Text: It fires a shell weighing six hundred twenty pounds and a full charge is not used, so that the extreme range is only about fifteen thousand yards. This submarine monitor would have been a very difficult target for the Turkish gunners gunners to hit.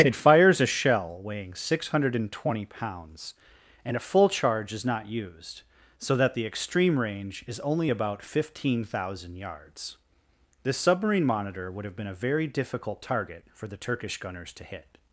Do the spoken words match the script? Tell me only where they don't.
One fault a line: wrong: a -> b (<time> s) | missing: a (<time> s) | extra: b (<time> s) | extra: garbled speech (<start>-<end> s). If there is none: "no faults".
missing: gunners (14.5 s)